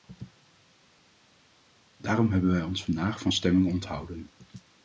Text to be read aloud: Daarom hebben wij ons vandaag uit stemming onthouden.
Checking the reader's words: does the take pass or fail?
fail